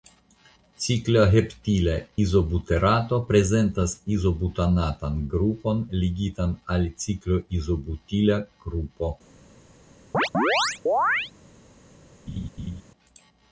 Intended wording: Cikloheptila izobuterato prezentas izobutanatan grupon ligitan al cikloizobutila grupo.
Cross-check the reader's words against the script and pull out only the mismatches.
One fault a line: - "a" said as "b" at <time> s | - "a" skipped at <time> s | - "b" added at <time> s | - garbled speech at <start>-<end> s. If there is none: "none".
none